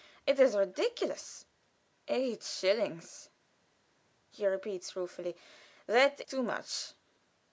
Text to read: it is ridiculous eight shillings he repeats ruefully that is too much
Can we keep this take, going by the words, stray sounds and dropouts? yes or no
no